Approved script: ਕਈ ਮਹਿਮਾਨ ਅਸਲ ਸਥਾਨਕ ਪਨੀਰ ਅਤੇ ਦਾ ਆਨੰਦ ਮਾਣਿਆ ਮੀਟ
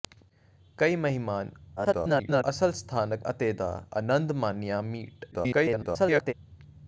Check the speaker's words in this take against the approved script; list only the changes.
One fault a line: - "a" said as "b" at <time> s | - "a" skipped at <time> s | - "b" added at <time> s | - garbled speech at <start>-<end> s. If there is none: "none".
- garbled speech at 1.8-2.4 s
- "ਪਨੀਰ" skipped at 3.2 s
- garbled speech at 5.3-6.3 s